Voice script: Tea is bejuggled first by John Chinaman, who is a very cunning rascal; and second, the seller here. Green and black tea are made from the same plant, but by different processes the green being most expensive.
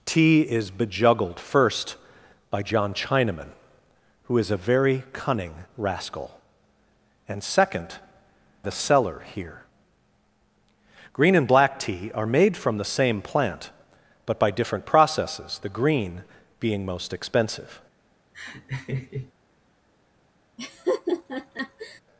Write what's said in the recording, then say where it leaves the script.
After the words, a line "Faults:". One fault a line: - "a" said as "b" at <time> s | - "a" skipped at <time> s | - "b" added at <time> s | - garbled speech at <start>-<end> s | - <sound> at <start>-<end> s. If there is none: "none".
Tea is bejuggled first by John Chinaman, who is a very cunning rascal; and second, the seller here. Green and black tea are made from the same plant, but by different processes the green being most expensive.
Faults:
- laugh at 18.3-19.3 s
- laugh at 20.6-22.0 s